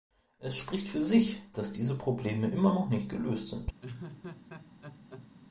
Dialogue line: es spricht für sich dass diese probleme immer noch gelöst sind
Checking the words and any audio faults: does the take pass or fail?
fail